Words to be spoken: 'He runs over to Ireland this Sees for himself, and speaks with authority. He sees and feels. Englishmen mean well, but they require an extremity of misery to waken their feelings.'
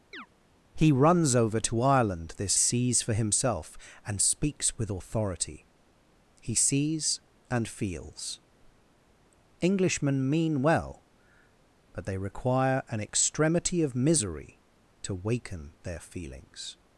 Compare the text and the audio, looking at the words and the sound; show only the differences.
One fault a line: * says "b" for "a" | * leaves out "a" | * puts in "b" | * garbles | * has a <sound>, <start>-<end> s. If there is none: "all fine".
* has a chirp, 0.1-0.3 s